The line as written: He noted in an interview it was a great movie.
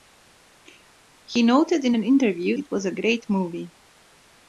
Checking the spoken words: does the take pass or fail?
pass